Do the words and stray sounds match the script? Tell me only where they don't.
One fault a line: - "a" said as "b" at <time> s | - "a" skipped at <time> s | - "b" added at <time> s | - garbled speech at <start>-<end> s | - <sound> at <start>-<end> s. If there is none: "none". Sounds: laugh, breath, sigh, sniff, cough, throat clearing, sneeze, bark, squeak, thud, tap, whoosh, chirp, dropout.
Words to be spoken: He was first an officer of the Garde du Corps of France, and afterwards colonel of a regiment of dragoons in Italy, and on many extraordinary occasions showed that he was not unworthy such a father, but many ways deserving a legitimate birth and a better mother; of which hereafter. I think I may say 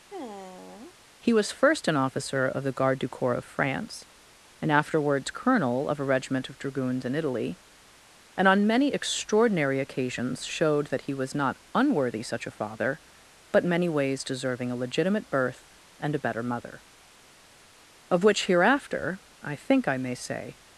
- sigh at 0.1-1.0 s